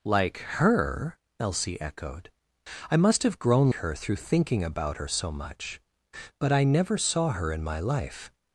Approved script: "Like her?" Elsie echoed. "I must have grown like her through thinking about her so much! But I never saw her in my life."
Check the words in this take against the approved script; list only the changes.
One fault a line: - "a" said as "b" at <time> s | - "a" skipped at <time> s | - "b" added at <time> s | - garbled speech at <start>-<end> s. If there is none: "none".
- "like" skipped at 3.7 s